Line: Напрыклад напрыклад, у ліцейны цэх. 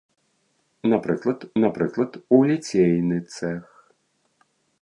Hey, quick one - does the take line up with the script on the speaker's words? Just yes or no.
yes